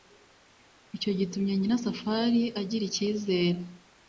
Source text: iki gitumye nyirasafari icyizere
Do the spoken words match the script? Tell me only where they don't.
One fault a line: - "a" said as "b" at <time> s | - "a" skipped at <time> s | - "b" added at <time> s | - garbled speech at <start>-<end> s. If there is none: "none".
- "iki" said as "icyo" at 0.9 s
- "agira" added at 2.6 s